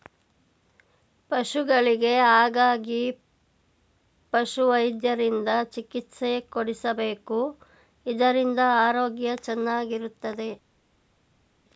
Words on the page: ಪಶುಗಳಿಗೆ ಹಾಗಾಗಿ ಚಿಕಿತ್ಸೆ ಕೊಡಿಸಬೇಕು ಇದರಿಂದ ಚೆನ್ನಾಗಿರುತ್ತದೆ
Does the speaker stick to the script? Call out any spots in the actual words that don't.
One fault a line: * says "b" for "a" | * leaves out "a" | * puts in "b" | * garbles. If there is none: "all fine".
* puts in "ಪಶುವೈದ್ಯರಿಂದ"
* puts in "ಆರೋಗ್ಯ"